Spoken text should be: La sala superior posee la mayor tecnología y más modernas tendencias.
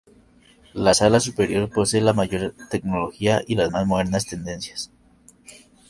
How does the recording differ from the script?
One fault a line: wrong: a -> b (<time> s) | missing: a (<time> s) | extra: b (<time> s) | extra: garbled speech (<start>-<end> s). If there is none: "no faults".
extra: las (3.6 s)